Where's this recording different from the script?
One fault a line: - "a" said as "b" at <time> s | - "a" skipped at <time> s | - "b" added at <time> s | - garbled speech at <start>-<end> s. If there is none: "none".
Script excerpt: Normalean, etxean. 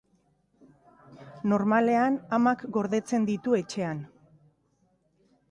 - "amak gordetzen ditu" added at 2.4 s